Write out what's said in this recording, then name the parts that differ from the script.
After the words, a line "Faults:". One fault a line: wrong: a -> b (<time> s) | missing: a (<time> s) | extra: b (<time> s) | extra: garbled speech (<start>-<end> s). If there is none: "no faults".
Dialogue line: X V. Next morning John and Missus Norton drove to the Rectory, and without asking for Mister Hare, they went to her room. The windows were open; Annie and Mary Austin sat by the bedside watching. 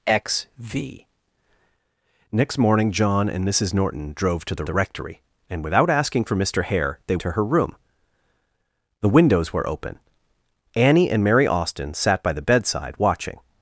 X V. Next morning John and Missus Norton drove to the the Rectory, and without asking for Mister Hare, they to her room. The windows were open; Annie and Mary Austin sat by the bedside watching.
Faults:
extra: the (4.6 s)
missing: went (7.2 s)